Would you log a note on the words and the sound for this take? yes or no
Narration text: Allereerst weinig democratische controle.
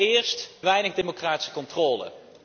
no